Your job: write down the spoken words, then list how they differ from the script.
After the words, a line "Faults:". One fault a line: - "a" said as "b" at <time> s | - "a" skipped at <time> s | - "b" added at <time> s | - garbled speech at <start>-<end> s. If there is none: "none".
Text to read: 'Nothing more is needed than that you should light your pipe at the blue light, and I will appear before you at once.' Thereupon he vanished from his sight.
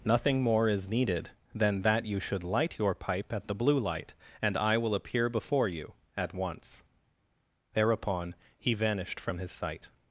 'Nothing more is needed than that you should light your pipe at the blue light, and I will appear before you at once.' Thereupon he vanished from his sight.
Faults:
none